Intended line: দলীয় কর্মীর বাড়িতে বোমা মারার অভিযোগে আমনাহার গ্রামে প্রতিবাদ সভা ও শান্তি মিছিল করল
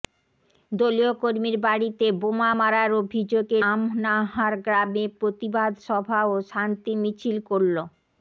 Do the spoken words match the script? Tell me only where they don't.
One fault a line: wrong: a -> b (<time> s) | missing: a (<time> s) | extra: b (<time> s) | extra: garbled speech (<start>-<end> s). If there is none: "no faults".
no faults